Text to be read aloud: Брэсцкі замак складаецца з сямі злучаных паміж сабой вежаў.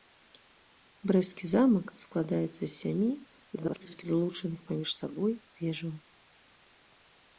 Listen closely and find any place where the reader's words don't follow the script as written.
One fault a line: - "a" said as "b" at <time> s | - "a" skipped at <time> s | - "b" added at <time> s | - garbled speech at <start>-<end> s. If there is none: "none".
- garbled speech at 3.6-4.0 s